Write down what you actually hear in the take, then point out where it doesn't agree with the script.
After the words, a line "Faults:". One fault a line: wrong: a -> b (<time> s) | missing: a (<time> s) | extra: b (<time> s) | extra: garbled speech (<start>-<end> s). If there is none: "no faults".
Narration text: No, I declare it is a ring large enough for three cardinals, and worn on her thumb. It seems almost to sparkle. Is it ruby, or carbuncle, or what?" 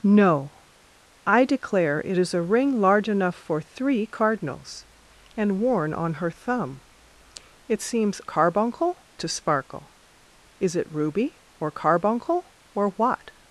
No, I declare it is a ring large enough for three cardinals, and worn on her thumb. It seems carbuncle to sparkle. Is it ruby, or carbuncle, or what?"
Faults:
wrong: almost -> carbuncle (8.2 s)